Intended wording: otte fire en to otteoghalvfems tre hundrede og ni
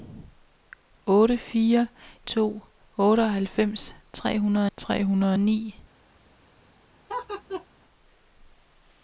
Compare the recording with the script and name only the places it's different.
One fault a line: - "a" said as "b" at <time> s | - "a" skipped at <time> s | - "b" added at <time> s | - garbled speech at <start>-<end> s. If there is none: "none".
- "en" skipped at 1.9 s
- "tre hundrede" added at 4.8 s